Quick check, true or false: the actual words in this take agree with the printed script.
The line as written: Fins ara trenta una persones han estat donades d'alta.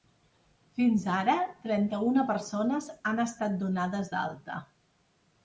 true